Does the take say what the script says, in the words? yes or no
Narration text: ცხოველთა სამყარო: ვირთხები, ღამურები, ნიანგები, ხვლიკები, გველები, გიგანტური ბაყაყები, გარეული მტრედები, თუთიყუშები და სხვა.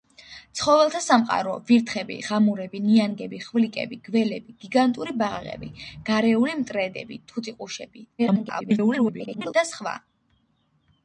no